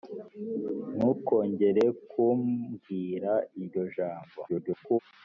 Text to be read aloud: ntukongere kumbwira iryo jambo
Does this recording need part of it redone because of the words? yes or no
yes